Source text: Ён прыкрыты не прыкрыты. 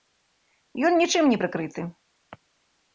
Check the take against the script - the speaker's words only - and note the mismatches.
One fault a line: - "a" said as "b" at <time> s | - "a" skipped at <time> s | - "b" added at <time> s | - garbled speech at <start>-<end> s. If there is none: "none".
- "прыкрыты" said as "нічым" at 1.0 s